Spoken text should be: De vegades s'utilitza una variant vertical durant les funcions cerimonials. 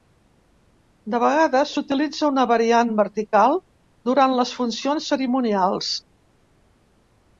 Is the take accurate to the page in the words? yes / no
yes